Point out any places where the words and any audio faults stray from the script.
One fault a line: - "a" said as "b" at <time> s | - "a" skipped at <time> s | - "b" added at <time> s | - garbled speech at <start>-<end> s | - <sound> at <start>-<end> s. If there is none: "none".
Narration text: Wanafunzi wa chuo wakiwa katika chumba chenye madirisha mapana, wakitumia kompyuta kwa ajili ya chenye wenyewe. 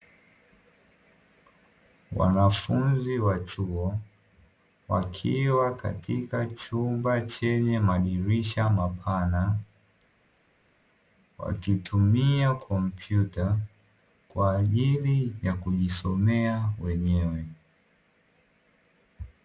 - "chenye" said as "kujisomea" at 15.5 s